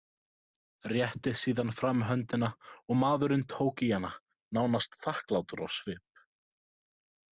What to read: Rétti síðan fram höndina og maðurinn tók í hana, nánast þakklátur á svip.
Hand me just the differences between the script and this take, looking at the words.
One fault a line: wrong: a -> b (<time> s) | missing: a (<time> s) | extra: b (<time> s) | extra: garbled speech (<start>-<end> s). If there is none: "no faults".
no faults